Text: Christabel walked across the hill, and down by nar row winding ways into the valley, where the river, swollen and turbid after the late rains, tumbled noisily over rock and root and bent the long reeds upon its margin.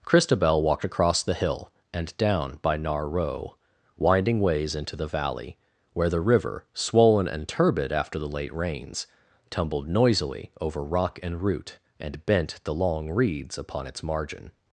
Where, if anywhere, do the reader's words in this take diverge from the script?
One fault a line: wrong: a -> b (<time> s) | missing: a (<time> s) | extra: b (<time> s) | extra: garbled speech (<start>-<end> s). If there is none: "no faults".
no faults